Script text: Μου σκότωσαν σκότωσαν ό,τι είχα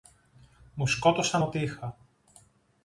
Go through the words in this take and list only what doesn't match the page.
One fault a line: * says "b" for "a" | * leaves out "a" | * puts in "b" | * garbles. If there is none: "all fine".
* leaves out "σκότωσαν"